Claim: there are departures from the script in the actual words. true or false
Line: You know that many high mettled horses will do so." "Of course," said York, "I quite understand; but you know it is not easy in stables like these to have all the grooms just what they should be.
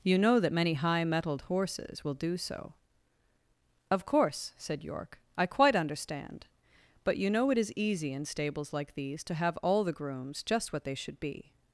true